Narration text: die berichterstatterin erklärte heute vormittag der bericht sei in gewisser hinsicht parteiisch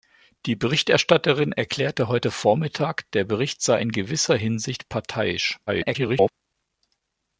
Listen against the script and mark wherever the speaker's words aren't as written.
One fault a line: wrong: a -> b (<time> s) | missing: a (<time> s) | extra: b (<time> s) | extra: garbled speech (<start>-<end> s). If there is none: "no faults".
extra: garbled speech (5.7-6.3 s)